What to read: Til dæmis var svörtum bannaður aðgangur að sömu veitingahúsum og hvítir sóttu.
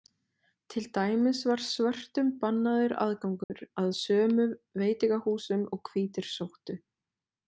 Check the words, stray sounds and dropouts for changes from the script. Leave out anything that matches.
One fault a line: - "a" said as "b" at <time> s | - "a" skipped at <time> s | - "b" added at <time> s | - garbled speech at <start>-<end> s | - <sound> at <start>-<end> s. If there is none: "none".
- dropout at 3.4-3.5 s